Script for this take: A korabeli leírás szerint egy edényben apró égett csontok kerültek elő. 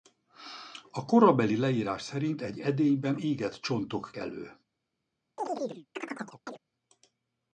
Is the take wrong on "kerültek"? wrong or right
wrong